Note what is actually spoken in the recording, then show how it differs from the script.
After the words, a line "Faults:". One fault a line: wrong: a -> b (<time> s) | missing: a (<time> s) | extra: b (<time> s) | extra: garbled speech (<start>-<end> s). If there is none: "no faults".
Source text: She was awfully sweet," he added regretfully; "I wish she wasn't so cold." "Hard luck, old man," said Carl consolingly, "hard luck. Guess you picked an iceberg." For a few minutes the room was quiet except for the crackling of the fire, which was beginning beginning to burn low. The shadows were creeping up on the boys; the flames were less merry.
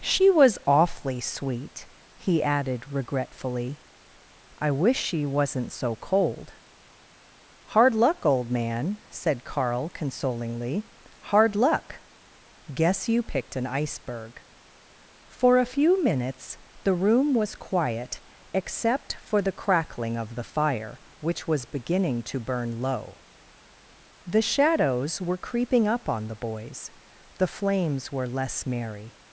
She was awfully sweet," he added regretfully; "I wish she wasn't so cold." "Hard luck, old man," said Carl consolingly, "hard luck. Guess you picked an iceberg." For a few minutes the room was quiet except for the crackling of the fire, which was beginning to burn low. The shadows were creeping up on the boys; the flames were less merry.
Faults:
missing: beginning (22.2 s)